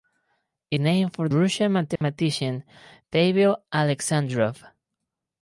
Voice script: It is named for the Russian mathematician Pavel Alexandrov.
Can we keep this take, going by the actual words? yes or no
no